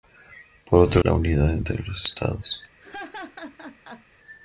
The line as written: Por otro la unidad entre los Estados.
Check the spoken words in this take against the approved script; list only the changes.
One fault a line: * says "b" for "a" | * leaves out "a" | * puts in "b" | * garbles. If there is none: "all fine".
all fine